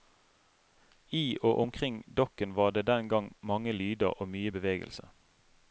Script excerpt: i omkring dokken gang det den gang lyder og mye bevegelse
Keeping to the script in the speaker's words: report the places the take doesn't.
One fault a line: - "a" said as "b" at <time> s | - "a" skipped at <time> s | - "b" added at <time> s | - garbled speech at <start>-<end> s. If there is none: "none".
- "og" added at 1.4 s
- "gang" said as "var" at 2.6 s
- "mange" added at 3.4 s